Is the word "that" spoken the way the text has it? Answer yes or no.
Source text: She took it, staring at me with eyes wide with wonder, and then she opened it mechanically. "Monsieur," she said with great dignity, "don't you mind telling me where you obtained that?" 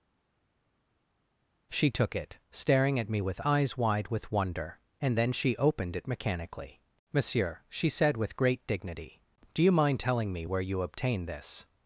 no